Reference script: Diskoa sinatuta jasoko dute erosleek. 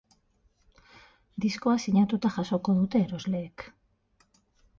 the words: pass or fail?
pass